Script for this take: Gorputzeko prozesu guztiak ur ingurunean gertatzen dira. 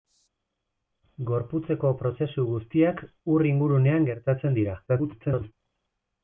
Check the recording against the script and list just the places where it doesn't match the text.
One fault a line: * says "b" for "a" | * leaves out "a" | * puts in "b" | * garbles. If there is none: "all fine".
* garbles